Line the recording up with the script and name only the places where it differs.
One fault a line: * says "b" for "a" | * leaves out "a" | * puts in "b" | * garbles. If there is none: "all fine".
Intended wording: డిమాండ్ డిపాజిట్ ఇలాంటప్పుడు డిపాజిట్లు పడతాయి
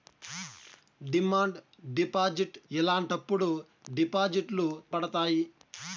all fine